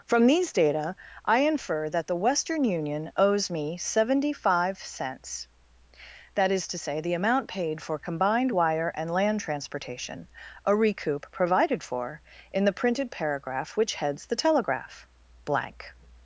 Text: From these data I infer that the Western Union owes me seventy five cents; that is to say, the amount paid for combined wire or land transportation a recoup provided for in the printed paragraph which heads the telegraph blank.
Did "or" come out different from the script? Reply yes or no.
yes